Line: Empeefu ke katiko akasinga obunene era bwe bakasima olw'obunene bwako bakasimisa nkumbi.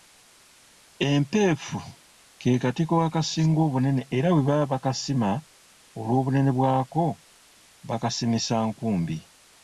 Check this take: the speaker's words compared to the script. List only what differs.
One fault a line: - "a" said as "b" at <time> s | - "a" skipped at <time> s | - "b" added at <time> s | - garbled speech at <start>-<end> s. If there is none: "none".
- "baba" added at 4.5 s